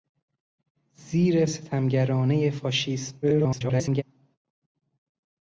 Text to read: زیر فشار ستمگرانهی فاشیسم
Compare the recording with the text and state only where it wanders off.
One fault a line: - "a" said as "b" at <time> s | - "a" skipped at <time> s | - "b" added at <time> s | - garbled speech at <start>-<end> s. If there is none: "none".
- "فشار" skipped at 1.4 s
- garbled speech at 3.2-4.0 s